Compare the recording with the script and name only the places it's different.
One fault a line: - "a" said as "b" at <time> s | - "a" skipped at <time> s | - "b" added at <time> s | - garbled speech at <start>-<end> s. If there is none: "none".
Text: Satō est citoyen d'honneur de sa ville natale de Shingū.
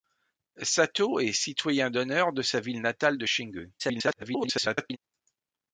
- garbled speech at 3.8-5.0 s